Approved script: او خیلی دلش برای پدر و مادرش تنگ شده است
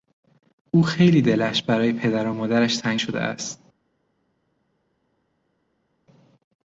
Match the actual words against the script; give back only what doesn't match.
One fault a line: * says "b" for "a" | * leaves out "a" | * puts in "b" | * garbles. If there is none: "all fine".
all fine